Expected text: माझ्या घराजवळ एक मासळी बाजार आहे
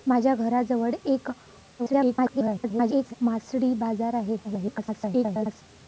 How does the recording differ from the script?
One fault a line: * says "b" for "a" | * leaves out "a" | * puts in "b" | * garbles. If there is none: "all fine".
* garbles
* garbles